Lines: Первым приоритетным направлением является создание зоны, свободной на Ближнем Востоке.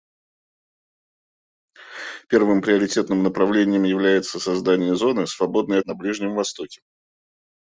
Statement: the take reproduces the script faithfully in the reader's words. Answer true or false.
true